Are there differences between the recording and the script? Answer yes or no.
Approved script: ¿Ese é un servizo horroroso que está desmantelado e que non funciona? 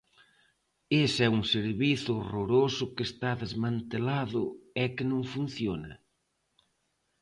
no